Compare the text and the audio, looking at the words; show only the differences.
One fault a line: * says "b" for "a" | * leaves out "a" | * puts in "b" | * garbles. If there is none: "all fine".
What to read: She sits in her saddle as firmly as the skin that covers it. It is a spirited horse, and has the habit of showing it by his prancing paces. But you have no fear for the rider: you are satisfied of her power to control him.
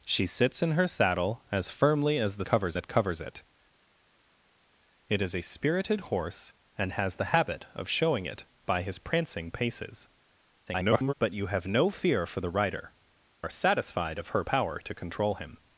* says "covers" for "skin"
* garbles
* leaves out "you"